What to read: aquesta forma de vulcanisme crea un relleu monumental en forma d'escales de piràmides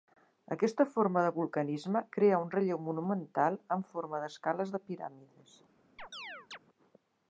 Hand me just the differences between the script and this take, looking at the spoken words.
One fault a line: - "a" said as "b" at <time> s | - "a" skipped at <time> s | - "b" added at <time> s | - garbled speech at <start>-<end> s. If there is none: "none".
none